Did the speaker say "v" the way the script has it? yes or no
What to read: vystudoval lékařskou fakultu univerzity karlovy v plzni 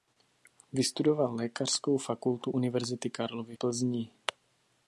no